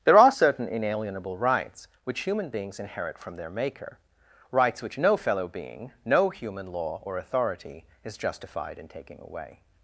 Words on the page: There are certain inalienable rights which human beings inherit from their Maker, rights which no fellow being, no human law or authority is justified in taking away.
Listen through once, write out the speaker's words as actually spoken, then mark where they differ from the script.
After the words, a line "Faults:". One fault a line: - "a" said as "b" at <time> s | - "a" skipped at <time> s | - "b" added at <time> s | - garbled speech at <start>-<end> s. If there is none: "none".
There are certain inalienable rights which human beings inherit from their Maker, rights which no fellow being, no human law or authority is justified in taking away.
Faults:
none